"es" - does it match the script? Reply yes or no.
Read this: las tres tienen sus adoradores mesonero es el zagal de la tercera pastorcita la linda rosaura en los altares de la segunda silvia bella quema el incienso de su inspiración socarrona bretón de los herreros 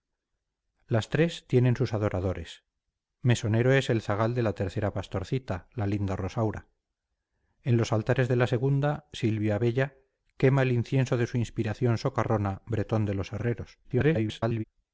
yes